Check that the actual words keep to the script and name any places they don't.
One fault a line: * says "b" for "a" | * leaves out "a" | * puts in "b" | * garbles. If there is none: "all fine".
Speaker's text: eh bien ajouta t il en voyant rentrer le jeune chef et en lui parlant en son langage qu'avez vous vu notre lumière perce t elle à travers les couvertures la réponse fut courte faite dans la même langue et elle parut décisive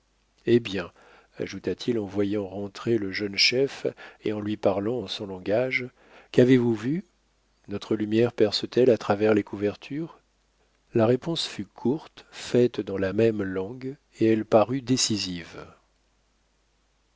all fine